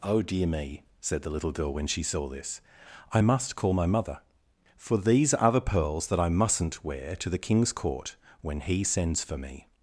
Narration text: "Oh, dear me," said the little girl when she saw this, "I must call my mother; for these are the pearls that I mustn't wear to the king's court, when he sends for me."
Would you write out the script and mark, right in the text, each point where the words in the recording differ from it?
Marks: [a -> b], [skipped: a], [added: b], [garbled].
"Oh, dear me," said the little girl when she saw this, "I must call my mother; for these are the pearls that I mustn't wear to the king's court, when he sends for me."